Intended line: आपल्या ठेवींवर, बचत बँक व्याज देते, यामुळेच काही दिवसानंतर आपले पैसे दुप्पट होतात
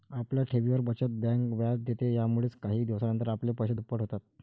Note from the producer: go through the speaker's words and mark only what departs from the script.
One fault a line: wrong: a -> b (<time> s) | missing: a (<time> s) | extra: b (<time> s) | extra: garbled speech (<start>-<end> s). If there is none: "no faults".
no faults